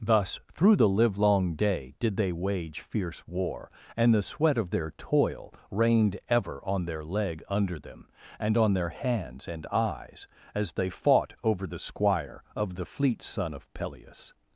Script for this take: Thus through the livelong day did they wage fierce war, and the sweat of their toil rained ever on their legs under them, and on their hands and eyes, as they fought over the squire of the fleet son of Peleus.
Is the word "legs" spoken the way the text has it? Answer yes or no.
no